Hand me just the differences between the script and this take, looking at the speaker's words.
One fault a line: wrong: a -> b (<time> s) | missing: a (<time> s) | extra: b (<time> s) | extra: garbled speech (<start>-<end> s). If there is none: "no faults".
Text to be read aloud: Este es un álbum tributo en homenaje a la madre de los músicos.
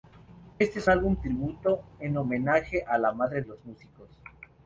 missing: un (0.9 s)
missing: de (3.4 s)